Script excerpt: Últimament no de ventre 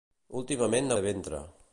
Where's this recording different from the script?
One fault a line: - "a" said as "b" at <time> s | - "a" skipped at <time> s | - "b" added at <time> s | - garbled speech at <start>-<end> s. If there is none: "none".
none